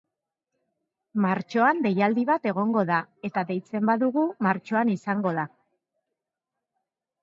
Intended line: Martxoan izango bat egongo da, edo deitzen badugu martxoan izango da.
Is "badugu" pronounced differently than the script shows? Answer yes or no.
no